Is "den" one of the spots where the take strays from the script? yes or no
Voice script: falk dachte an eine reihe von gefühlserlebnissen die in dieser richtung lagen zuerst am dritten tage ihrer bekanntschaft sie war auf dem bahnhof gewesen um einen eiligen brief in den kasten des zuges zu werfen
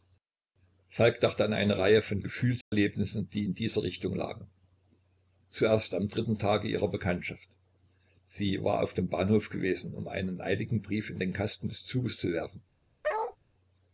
no